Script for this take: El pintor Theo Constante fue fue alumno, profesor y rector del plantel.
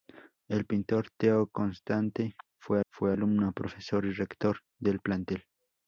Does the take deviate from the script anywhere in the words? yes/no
no